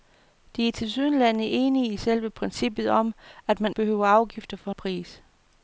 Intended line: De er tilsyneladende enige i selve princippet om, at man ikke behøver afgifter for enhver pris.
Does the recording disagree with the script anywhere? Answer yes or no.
yes